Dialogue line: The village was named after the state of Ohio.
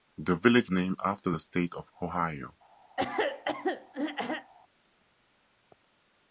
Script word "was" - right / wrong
wrong